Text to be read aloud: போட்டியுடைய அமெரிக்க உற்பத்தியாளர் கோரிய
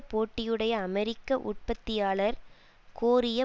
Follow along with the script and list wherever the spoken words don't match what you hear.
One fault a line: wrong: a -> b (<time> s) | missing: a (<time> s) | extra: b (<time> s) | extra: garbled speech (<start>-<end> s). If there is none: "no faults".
no faults